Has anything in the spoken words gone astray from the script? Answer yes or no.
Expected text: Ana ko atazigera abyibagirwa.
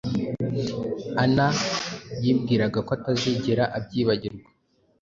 yes